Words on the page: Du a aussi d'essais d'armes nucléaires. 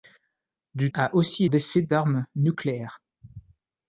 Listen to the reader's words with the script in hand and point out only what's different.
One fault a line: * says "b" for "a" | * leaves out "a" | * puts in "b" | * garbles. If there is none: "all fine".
all fine